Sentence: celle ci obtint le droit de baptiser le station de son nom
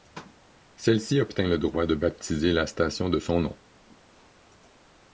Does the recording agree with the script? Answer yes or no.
no